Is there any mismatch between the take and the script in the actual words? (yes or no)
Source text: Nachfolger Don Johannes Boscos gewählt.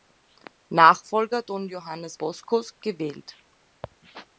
no